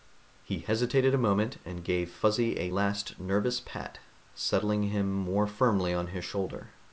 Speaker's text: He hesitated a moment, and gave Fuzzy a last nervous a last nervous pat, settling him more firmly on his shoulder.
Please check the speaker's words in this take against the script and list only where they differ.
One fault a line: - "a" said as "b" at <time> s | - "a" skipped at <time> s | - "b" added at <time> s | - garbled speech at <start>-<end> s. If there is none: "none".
- "a last nervous" skipped at 3.6 s